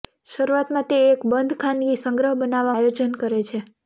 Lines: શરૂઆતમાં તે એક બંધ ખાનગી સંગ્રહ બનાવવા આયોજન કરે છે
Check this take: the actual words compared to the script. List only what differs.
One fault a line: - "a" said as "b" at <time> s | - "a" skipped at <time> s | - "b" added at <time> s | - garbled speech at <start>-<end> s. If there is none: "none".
none